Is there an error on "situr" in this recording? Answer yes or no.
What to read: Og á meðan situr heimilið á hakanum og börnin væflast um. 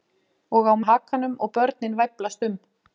yes